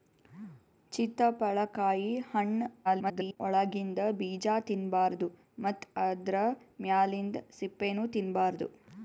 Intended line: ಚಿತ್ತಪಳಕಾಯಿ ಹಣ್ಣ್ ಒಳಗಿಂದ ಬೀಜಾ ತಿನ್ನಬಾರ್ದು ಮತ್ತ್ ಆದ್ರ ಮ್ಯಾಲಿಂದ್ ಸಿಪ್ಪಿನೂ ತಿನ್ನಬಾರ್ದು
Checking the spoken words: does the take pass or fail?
fail